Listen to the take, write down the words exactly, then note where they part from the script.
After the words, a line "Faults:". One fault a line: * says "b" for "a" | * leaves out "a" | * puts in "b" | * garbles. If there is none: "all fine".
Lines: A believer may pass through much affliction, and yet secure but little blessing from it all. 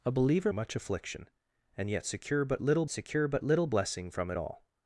A believer much affliction, and yet secure but little secure but little blessing from it all.
Faults:
* leaves out "may pass through"
* puts in "secure but little"